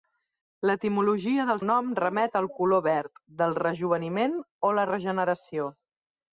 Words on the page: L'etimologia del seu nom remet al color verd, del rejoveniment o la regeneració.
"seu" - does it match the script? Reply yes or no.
no